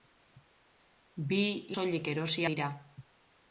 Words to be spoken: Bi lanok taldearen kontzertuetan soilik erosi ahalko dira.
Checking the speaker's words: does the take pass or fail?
fail